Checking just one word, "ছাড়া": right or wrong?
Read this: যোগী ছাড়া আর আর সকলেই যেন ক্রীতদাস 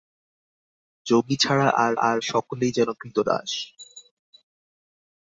right